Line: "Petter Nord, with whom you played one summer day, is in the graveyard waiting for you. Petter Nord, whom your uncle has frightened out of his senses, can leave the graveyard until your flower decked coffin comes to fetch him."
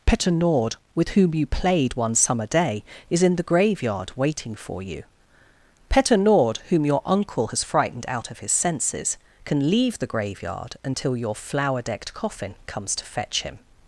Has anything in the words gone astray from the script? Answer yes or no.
no